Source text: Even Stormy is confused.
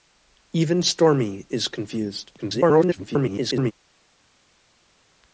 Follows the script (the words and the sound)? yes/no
no